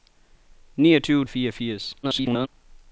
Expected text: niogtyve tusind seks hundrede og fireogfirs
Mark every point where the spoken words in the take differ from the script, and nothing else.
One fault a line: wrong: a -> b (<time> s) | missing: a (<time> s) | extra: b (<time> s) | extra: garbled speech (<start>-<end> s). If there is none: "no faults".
missing: tusind seks hundrede (1.2 s)
extra: garbled speech (2.0-2.5 s)